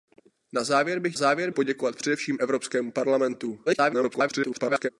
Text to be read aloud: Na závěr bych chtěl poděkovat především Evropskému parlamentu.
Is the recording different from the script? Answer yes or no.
yes